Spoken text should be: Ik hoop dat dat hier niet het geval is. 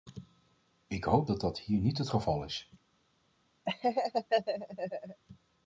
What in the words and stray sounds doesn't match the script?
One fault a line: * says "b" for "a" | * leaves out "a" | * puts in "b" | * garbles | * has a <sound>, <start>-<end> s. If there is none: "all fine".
* has a laugh, 3.7-5.2 s